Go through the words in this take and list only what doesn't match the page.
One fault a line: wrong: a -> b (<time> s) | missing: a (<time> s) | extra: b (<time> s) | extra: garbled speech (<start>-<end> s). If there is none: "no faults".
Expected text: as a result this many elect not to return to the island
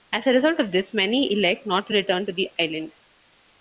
extra: of (0.6 s)